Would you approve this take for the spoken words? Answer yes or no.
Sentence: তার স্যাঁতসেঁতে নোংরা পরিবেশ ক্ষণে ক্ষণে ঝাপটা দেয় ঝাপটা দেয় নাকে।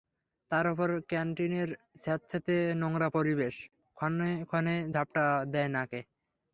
no